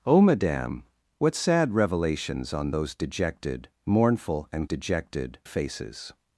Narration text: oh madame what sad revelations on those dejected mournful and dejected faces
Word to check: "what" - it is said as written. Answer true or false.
true